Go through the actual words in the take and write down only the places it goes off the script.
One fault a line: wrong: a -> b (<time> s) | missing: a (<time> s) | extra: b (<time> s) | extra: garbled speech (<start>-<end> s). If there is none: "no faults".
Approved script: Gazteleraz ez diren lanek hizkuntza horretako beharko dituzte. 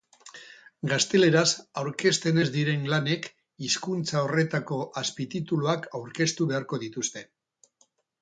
extra: aurkezten (1.8 s)
extra: azpitituluak aurkeztu (5.0 s)